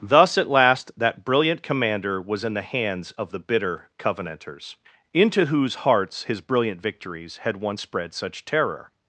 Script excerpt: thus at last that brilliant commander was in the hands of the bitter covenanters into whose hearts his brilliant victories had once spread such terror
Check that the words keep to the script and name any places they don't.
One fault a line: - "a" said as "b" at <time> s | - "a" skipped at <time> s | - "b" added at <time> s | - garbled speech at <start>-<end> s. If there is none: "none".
none